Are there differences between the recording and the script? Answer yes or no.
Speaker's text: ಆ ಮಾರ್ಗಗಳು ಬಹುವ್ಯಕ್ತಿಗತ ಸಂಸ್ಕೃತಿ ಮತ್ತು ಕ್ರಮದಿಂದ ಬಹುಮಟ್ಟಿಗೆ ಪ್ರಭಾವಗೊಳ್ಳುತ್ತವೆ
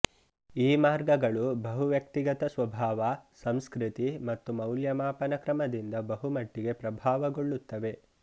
yes